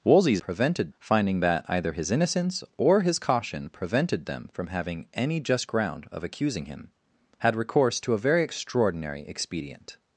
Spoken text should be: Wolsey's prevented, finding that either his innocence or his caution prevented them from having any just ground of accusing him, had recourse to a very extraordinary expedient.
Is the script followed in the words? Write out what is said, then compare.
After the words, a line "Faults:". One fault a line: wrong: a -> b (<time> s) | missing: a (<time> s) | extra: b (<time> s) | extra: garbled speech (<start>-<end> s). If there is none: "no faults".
Wolsey's prevented, finding that either his innocence or his caution prevented them from having any just ground of accusing him, had recourse to a very extraordinary expedient.
Faults:
no faults